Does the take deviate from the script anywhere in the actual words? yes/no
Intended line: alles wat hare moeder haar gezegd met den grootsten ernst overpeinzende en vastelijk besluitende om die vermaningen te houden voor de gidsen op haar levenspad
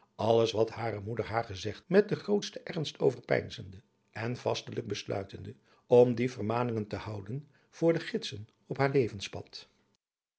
no